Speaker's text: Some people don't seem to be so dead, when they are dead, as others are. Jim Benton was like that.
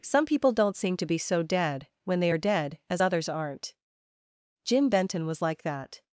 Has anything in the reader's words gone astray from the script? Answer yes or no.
yes